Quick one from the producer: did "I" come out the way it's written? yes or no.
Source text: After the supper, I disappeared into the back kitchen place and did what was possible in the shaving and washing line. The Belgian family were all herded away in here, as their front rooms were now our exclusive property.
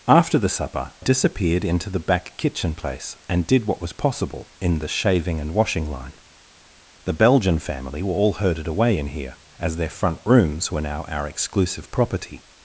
no